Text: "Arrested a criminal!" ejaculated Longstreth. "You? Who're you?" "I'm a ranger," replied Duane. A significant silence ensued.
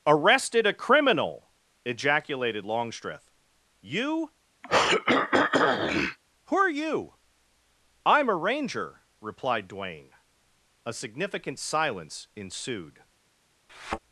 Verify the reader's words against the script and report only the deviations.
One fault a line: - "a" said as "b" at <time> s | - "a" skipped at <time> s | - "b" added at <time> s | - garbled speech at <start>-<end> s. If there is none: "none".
none